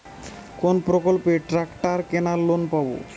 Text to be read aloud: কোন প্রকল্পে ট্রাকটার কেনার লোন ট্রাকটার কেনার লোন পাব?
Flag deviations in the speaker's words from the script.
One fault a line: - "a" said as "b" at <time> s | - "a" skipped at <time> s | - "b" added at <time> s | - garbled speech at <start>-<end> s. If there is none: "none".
- "ট্রাকটার কেনার লোন" skipped at 2.6 s